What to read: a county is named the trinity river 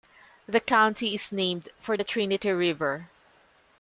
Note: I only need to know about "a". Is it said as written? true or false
false